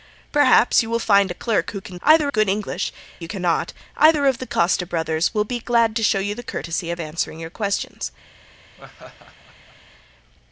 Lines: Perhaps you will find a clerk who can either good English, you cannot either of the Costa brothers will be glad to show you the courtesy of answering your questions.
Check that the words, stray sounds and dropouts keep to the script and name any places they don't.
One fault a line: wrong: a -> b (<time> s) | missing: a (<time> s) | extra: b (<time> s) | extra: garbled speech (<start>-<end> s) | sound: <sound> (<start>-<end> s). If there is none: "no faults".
sound: laugh (8.8-9.8 s)